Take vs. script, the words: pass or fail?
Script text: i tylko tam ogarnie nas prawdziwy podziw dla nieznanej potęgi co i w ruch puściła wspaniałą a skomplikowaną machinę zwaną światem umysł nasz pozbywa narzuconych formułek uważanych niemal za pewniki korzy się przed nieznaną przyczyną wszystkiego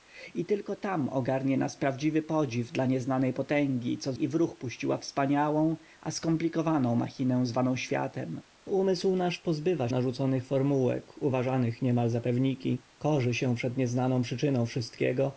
pass